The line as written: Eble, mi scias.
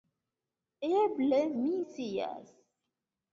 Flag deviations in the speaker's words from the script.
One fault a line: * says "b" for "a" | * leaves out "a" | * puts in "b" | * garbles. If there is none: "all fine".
all fine